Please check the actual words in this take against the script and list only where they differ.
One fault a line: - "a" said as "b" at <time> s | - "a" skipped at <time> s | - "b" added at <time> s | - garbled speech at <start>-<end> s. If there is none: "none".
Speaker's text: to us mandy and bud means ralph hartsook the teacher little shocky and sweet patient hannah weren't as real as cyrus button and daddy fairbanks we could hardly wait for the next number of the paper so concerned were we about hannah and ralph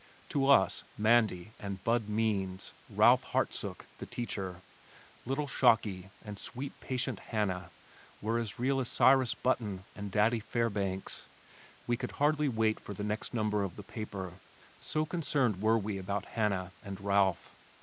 - "weren't" said as "were" at 8.2 s